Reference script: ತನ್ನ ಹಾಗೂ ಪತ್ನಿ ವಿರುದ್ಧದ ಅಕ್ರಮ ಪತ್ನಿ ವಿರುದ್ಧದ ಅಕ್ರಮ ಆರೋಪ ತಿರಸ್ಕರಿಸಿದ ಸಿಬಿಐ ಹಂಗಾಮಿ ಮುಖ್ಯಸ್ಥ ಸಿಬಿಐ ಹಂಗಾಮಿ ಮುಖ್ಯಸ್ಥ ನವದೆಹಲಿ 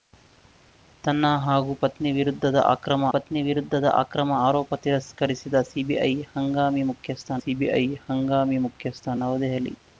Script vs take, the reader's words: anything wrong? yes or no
no